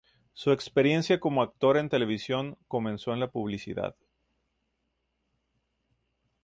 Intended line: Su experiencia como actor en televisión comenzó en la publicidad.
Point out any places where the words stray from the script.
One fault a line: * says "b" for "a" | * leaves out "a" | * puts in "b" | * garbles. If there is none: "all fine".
all fine